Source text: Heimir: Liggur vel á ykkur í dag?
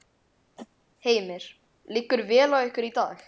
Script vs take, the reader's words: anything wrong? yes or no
no